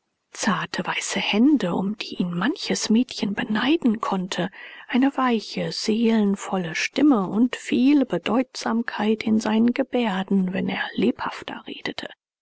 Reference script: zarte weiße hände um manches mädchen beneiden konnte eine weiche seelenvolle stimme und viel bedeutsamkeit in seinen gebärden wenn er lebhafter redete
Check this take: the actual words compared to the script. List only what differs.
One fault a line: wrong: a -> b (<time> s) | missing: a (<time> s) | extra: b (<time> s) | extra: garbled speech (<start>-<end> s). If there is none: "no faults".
extra: die ihn (2.0 s)